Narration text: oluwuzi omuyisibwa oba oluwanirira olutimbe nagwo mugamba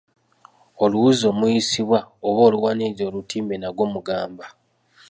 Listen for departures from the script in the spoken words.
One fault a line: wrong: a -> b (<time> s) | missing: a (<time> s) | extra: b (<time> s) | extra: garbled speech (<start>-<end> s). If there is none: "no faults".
no faults